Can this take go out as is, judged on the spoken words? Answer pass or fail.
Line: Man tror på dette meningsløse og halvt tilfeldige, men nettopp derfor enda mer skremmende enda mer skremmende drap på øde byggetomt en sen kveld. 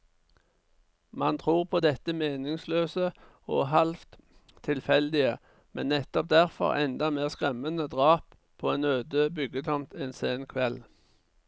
fail